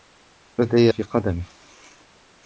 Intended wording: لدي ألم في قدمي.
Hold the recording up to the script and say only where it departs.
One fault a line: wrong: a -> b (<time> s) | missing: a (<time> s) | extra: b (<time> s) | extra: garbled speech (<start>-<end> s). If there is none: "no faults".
missing: ألم (0.9 s)